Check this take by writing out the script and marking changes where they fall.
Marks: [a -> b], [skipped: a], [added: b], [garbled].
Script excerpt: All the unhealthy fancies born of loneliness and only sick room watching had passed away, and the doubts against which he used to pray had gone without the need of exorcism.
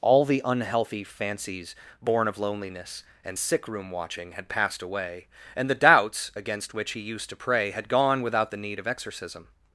All the unhealthy fancies born of loneliness and [skipped: only] sick room watching had passed away, and the doubts against which he used to pray had gone without the need of exorcism.